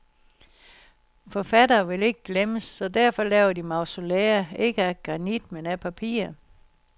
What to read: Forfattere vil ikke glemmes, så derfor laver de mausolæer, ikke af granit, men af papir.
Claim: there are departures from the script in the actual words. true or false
false